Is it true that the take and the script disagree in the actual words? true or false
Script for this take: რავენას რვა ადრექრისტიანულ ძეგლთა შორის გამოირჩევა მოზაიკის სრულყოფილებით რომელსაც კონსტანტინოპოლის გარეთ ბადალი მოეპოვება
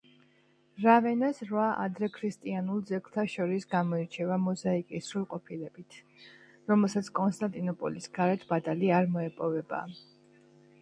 true